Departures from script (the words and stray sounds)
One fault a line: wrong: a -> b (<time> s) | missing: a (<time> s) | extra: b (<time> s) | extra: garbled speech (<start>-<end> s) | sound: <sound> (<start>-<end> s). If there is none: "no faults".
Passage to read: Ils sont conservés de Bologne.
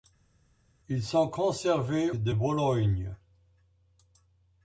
no faults